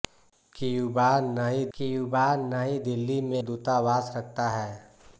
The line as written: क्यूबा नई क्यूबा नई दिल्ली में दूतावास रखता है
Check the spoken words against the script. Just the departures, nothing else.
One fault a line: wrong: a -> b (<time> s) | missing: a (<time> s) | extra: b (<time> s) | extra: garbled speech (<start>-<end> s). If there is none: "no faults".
no faults